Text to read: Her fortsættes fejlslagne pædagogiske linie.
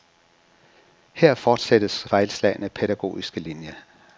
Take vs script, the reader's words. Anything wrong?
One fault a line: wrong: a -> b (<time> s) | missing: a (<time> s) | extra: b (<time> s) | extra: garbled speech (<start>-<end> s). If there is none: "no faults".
no faults